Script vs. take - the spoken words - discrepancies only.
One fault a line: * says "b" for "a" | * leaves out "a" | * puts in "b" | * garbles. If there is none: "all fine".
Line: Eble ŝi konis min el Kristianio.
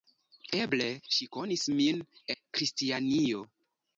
* leaves out "el"